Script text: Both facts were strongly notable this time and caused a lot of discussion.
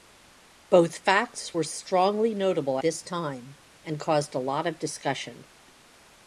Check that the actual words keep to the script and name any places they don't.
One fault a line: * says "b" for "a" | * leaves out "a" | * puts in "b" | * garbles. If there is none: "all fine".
all fine